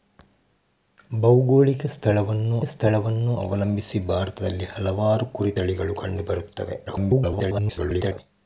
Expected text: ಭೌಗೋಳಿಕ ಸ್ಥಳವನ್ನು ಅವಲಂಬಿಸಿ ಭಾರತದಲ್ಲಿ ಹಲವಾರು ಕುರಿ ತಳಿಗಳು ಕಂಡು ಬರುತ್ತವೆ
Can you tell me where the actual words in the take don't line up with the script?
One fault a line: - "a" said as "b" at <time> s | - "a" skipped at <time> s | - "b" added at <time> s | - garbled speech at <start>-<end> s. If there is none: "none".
- "ಸ್ಥಳವನ್ನು" added at 2.7 s
- garbled speech at 6.9-8.2 s